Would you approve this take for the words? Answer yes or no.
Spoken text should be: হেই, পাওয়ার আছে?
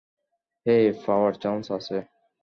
no